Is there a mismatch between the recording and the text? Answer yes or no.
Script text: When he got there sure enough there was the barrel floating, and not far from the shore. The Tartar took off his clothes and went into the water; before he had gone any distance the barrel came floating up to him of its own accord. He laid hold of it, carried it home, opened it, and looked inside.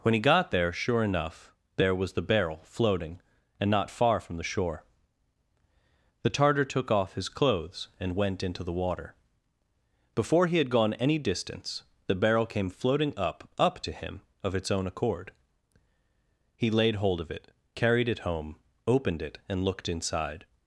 yes